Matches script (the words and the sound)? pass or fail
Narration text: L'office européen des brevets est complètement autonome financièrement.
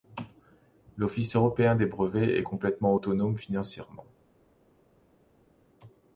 pass